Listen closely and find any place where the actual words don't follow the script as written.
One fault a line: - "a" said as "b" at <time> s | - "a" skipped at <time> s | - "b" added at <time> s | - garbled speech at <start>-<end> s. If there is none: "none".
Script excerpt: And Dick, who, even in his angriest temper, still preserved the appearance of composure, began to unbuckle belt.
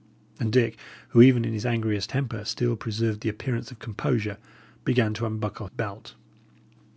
none